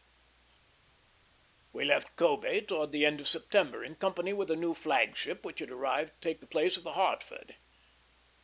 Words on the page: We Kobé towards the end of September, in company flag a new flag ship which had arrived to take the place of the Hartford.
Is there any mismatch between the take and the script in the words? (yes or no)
yes